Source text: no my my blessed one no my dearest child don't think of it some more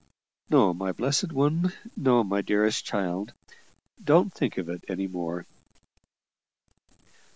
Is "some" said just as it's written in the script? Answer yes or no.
no